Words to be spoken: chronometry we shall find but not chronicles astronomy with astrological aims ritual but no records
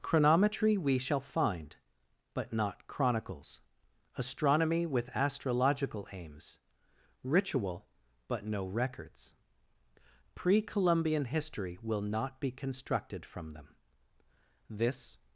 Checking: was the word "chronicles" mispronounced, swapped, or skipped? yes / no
no